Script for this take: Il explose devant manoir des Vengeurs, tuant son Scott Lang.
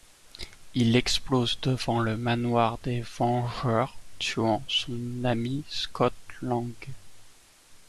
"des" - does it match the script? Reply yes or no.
yes